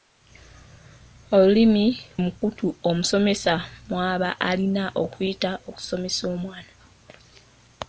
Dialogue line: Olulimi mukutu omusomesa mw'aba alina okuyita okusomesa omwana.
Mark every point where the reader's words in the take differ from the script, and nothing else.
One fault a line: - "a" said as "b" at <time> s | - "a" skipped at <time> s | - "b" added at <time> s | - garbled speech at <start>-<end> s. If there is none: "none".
none